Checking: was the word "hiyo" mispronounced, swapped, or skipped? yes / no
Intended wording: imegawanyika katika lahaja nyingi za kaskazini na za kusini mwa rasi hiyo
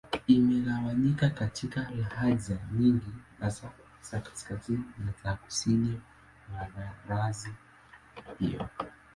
no